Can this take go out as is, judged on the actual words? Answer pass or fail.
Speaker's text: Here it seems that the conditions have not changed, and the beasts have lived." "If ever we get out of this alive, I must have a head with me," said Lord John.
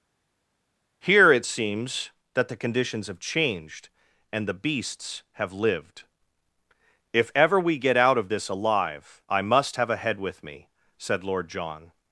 fail